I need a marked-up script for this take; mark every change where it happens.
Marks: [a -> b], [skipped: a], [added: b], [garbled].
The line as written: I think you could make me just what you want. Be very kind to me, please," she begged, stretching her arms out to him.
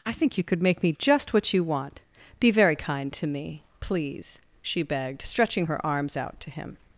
I think you could make me just what you want. Be very kind to me, please," she begged, stretching her arms out to him.